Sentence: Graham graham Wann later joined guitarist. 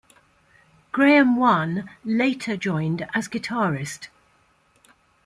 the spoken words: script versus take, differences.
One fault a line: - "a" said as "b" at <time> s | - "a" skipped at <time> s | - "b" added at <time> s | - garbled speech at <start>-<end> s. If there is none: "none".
- "graham" skipped at 1.4 s
- "as" added at 3.1 s